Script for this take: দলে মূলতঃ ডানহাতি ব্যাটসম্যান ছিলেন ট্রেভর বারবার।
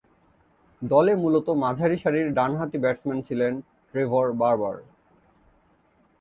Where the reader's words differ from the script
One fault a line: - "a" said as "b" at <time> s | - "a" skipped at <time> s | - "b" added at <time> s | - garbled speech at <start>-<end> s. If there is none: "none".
- "মাঝারিসারির" added at 1.6 s